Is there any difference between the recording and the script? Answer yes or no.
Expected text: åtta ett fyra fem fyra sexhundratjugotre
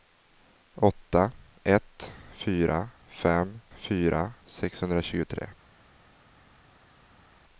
no